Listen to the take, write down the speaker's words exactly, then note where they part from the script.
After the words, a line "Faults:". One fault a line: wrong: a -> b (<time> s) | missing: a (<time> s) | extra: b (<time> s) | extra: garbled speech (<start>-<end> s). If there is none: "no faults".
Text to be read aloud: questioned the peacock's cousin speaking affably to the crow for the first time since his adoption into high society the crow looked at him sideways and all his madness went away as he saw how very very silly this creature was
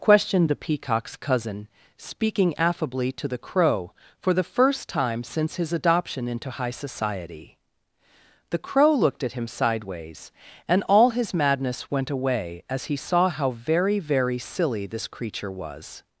questioned the peacock's cousin speaking affably to the crow for the first time since his adoption into high society the crow looked at him sideways and all his madness went away as he saw how very very silly this creature was
Faults:
no faults